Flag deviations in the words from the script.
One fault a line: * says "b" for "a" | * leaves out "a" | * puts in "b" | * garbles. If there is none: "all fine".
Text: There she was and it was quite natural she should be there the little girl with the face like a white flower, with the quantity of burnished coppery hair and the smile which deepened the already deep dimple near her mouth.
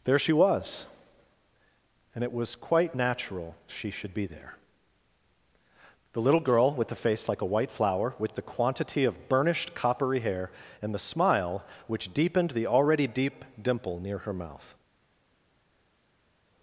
all fine